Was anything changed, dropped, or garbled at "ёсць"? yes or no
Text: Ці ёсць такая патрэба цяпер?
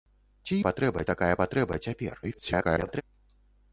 yes